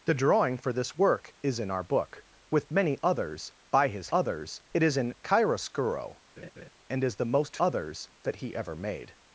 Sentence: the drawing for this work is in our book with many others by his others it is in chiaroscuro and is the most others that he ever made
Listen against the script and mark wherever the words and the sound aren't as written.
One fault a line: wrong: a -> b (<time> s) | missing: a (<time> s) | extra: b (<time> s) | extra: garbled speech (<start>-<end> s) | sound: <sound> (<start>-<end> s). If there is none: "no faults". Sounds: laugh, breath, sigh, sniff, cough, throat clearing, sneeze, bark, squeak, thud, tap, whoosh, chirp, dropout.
sound: laugh (6.4-6.7 s)